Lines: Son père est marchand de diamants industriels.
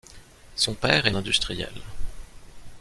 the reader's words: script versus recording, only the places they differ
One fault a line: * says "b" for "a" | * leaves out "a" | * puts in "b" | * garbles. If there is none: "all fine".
* leaves out "marchand de diamants"